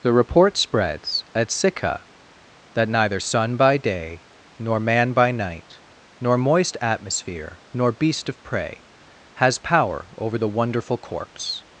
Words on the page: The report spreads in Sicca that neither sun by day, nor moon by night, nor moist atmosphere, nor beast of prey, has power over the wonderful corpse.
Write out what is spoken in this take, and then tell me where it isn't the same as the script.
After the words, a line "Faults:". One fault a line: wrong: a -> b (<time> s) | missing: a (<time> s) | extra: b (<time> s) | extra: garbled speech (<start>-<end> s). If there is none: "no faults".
The report spreads at Sicca that neither sun by day, nor man by night, nor moist atmosphere, nor beast of prey, has power over the wonderful corpse.
Faults:
wrong: in -> at (1.4 s)
wrong: moon -> man (4.8 s)